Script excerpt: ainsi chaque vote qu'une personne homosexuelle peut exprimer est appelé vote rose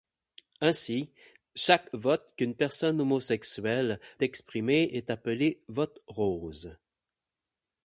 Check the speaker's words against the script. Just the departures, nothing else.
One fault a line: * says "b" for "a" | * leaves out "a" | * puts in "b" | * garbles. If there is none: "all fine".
* leaves out "peut"